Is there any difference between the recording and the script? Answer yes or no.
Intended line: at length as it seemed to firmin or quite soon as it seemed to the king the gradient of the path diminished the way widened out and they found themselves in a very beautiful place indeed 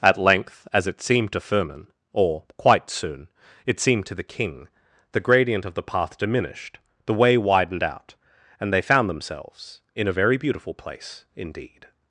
yes